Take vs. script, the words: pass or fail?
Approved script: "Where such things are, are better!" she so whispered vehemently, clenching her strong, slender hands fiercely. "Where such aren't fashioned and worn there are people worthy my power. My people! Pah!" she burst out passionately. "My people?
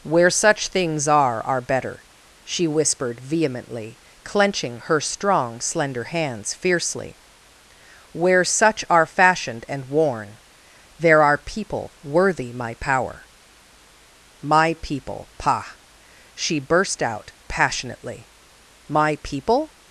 fail